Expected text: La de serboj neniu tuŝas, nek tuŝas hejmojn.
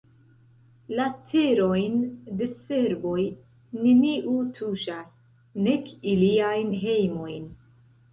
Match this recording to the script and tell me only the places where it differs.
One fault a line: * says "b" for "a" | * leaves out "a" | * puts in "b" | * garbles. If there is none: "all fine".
* puts in "terojn"
* says "iliajn" for "tuŝas"